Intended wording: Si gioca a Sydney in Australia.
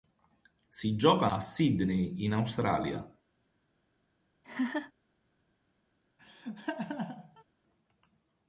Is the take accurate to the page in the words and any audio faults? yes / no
no